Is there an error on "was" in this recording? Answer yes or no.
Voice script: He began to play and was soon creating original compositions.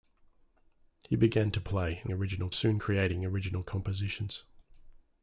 yes